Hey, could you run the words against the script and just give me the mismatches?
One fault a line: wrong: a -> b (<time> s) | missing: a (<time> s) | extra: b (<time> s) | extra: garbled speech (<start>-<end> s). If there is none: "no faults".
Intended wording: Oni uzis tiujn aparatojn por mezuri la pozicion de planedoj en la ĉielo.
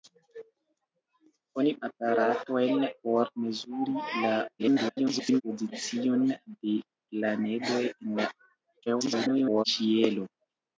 missing: uzis tiujn (1.7 s)
extra: garbled speech (4.6-5.4 s)
extra: garbled speech (8.9-9.6 s)